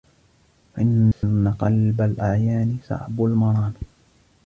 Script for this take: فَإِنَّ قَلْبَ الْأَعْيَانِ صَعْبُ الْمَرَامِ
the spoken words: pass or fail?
pass